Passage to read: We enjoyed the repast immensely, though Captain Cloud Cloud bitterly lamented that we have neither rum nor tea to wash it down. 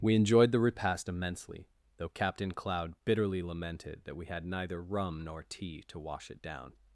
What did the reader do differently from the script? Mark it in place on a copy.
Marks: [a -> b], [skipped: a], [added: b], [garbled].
We enjoyed the repast immensely, though Captain Cloud [skipped: Cloud] bitterly lamented that we [have -> had] neither rum nor tea to wash it down.